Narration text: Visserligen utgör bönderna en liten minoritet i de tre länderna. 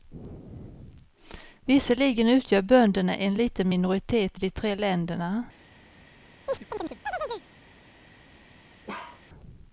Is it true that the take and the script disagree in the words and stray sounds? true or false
true